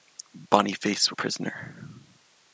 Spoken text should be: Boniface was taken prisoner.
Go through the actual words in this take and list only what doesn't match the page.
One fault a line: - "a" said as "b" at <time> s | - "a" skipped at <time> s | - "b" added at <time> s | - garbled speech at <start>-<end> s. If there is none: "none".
- "was taken" skipped at 1.1 s